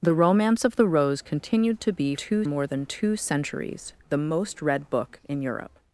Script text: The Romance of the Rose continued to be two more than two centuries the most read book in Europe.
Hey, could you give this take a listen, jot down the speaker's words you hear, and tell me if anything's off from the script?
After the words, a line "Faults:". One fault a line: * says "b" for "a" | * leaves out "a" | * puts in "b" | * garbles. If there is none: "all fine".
The Romance of the Rose continued to be two more than two centuries the most read book in Europe.
Faults:
all fine